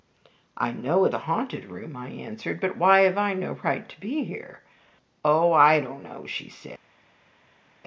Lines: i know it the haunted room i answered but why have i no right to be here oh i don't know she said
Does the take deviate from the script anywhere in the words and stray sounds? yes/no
no